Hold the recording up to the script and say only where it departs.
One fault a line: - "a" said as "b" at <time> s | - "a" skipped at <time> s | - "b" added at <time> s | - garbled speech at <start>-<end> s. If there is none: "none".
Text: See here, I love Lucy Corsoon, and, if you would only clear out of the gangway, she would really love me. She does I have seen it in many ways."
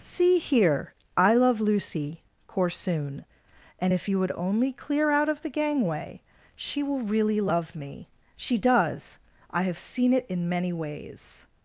- "would" said as "will" at 6.8 s